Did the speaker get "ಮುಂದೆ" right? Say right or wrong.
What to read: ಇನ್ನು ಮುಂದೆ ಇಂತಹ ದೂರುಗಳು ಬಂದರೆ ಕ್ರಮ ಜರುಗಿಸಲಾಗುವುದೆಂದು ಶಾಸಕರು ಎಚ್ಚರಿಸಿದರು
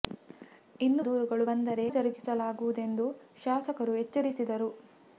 wrong